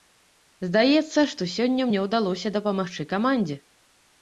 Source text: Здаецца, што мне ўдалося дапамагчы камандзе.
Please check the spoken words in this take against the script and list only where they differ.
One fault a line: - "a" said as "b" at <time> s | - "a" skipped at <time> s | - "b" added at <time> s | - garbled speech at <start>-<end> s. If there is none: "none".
- "сёння" added at 1.6 s